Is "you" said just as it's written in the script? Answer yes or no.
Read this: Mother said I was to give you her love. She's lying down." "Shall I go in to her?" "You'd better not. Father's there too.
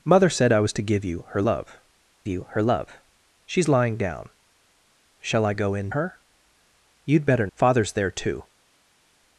yes